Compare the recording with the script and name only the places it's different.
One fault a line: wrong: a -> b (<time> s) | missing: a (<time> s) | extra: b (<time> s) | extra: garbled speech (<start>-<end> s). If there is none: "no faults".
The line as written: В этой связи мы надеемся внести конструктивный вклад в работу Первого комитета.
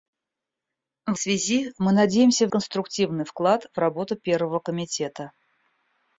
missing: этой (1.2 s)
missing: внести (2.5 s)